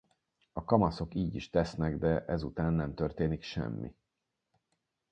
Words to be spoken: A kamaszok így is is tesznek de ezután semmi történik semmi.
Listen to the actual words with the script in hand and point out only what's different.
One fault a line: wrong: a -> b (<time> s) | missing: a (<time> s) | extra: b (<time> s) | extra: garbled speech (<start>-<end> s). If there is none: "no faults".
missing: is (1.5 s)
wrong: semmi -> nem (2.7 s)